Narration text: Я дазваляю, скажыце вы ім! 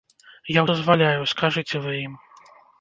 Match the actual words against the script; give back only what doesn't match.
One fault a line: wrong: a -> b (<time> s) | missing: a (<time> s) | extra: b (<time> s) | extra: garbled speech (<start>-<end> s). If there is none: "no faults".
no faults